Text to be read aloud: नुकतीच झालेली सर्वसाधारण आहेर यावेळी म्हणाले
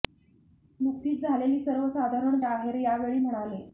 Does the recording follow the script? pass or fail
pass